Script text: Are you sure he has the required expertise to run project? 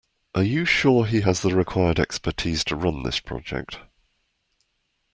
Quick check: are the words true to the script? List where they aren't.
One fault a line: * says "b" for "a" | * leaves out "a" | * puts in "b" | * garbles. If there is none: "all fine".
* puts in "this"